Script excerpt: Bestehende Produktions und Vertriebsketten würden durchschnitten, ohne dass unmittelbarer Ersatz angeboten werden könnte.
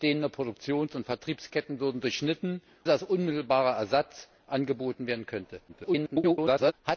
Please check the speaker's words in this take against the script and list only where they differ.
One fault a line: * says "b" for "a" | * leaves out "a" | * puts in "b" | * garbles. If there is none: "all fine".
* leaves out "ohne"
* garbles